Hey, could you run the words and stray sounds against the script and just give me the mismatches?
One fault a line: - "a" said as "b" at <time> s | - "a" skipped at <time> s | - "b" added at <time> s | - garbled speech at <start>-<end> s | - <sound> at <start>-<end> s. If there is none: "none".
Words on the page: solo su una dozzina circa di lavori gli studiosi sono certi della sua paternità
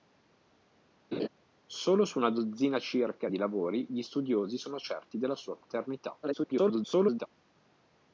- laugh at 1.1-1.3 s
- garbled speech at 6.2-7.3 s